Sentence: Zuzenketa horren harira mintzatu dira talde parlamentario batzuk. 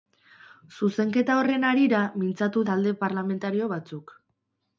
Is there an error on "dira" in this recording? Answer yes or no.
yes